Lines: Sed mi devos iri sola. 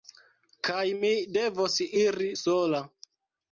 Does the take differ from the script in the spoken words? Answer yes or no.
yes